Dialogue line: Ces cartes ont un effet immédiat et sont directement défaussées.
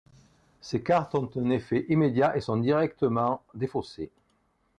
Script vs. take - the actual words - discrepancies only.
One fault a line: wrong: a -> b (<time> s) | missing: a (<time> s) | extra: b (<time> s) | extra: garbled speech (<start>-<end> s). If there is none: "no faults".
no faults